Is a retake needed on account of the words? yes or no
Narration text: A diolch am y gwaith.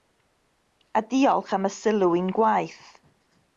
yes